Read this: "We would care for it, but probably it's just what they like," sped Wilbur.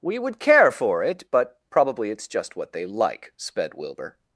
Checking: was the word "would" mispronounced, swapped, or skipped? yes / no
no